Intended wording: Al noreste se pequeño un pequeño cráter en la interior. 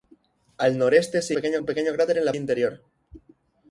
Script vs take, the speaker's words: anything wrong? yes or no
no